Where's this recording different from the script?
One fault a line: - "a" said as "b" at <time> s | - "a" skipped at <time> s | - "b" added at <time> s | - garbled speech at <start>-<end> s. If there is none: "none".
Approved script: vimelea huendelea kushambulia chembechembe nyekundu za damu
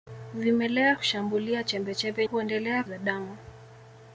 - "huendelea" skipped at 0.9 s
- "nyekundu" said as "huendelea" at 2.2 s